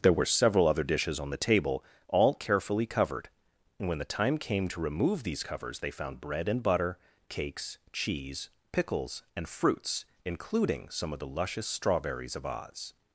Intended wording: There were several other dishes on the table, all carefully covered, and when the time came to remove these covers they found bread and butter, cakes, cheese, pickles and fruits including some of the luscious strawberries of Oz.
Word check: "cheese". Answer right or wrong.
right